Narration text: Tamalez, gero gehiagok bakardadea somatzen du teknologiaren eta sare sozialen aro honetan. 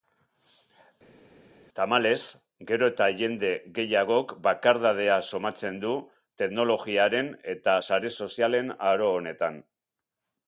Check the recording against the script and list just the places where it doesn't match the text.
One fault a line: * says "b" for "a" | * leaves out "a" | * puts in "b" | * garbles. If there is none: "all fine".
* puts in "eta jende"